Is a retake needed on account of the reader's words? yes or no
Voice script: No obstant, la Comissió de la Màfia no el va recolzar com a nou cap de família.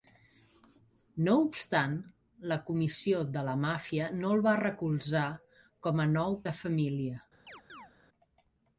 yes